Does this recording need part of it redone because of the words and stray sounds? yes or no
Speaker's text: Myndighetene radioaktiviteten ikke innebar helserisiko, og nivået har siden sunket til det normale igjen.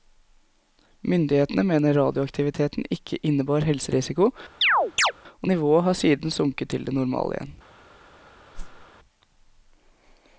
yes